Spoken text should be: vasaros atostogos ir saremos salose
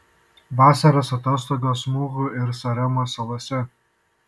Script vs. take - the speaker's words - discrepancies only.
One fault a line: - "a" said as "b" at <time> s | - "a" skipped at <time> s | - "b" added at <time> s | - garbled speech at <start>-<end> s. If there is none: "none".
- "muhu" added at 2.0 s